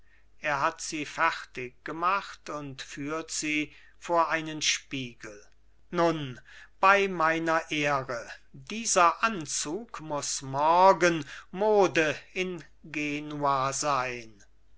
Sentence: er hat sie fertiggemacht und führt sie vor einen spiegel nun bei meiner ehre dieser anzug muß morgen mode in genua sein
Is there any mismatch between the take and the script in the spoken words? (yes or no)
no